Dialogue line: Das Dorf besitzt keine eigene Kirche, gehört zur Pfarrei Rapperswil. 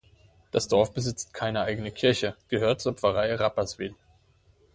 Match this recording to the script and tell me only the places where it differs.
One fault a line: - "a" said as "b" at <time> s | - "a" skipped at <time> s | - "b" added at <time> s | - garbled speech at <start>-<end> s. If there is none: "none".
none